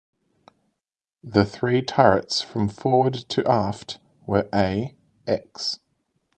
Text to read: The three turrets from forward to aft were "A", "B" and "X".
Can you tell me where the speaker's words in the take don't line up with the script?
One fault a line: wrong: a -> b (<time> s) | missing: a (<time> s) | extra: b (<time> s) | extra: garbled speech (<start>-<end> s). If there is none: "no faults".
missing: B and (4.9 s)